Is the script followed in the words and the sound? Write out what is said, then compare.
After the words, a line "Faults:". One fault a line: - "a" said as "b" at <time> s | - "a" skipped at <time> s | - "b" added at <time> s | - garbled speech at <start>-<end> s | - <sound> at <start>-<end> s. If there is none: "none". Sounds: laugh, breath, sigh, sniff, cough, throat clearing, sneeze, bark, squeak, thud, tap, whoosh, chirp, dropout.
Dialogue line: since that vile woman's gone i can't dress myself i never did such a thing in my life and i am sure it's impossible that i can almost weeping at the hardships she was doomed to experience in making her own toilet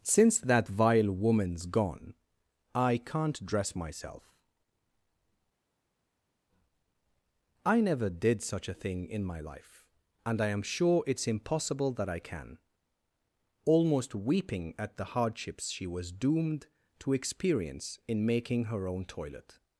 since that vile woman's gone i can't dress myself i never did such a thing in my life and i am sure it's impossible that i can almost weeping at the hardships she was doomed to experience in making her own toilet
Faults:
none